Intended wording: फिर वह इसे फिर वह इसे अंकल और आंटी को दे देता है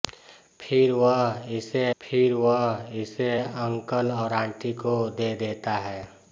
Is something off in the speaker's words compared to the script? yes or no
no